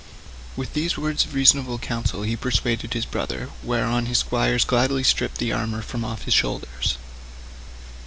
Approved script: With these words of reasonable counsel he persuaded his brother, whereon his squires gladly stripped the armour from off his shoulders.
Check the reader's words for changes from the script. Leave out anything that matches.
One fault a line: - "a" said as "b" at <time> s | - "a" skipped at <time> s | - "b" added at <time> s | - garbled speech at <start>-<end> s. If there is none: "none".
none